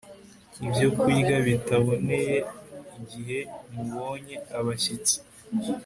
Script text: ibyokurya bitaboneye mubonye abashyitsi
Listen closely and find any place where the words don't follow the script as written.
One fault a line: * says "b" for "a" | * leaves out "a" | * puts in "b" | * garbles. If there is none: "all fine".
* puts in "igihe"